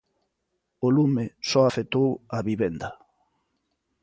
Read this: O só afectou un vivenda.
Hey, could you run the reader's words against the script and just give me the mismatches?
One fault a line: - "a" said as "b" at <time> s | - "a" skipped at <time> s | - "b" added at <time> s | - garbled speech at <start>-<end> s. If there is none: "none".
- "lume" added at 0.9 s
- "un" said as "a" at 2.3 s